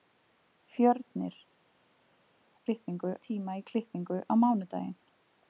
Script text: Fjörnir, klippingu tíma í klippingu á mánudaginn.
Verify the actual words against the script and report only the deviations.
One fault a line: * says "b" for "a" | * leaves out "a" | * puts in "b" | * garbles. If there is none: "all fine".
all fine